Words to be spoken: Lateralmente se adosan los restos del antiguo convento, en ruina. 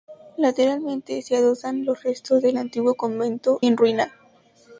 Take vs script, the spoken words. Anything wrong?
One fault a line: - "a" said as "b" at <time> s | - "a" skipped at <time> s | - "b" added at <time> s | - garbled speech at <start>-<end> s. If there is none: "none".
none